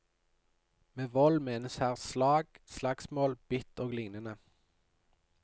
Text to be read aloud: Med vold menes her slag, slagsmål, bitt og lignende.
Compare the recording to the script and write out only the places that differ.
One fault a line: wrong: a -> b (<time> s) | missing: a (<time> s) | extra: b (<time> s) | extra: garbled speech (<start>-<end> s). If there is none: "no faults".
no faults